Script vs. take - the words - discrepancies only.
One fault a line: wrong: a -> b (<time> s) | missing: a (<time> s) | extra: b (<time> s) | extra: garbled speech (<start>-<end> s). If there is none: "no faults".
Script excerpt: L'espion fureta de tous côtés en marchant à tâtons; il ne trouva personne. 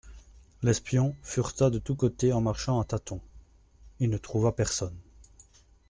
no faults